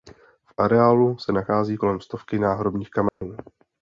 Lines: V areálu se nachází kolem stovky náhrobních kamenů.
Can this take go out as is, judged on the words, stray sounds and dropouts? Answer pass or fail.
fail